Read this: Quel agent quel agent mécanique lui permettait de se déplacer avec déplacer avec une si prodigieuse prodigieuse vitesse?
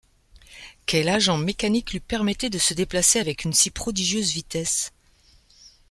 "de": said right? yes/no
yes